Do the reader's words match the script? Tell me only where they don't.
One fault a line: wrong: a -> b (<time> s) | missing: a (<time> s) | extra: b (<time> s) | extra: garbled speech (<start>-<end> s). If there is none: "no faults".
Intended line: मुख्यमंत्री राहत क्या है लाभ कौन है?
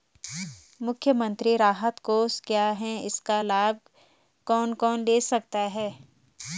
extra: कोष (2.0 s)
extra: इसका (3.0 s)
extra: कौन ले सकता (4.7 s)